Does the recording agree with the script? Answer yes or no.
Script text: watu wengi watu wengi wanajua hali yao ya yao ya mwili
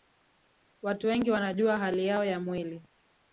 no